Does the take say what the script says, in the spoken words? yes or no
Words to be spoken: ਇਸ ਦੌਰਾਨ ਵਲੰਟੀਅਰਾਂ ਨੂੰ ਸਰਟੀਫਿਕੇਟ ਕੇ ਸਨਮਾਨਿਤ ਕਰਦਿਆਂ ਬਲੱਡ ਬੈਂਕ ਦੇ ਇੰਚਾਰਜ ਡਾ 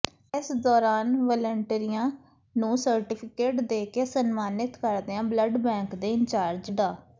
no